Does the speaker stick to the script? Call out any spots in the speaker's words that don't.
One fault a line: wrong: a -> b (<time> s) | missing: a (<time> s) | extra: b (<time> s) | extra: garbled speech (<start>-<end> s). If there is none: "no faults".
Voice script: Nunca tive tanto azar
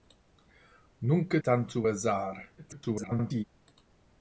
missing: tive (1.4 s)
extra: garbled speech (2.6-3.4 s)